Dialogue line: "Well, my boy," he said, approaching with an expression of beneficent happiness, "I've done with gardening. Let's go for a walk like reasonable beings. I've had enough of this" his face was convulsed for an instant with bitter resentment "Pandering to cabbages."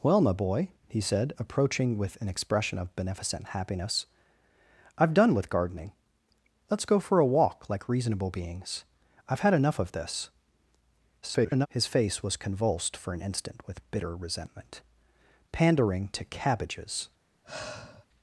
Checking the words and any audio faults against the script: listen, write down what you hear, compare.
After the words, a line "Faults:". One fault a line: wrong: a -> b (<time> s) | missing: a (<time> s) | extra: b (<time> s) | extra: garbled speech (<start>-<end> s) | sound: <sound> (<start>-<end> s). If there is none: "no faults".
"Well, my boy," he said, approaching with an expression of beneficent happiness, "I've done with gardening. Let's go for a walk like reasonable beings. I've had enough of this" [garbled] his face was convulsed for an instant with bitter resentment "Pandering to cabbages."
Faults:
extra: garbled speech (11.2-11.7 s)
sound: sigh (17.4-18.1 s)